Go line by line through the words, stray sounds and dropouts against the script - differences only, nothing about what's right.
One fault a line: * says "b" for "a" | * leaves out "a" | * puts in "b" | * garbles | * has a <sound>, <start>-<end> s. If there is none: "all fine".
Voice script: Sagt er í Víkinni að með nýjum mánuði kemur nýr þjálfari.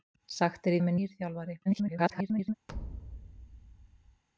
* leaves out "Víkinni"
* leaves out "nýjum mánuði kemur"
* garbles
* has a thud, 2.7-4.2 s